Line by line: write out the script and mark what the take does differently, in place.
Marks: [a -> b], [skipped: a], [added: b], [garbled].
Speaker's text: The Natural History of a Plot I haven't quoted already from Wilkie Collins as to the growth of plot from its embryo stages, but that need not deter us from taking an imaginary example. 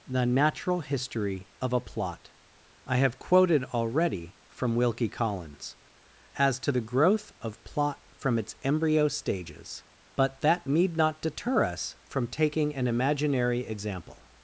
The Natural History of a Plot I [haven't -> have] quoted already from Wilkie Collins as to the growth of plot from its embryo stages, but that need not deter us from taking an imaginary example.